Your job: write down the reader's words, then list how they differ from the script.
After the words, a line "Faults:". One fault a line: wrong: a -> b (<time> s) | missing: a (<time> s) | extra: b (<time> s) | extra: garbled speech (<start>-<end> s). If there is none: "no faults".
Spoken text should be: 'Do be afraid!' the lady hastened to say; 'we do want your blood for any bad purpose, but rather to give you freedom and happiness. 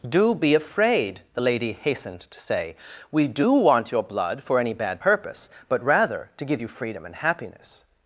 'Do be afraid!' the lady hastened to say; 'we do want your blood for any bad purpose, but rather to give you freedom and happiness.
Faults:
no faults